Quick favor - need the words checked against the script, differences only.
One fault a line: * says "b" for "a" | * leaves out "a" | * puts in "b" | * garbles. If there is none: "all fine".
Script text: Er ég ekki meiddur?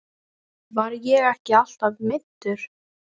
* says "Var" for "Er"
* puts in "alltaf"